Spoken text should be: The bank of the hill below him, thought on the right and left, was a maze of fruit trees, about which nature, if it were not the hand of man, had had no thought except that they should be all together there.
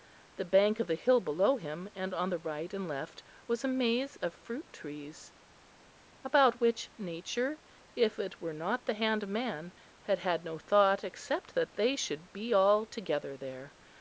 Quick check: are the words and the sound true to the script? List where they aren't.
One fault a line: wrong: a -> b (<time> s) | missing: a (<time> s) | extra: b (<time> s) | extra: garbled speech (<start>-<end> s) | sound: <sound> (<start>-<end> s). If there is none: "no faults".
wrong: thought -> and (1.9 s)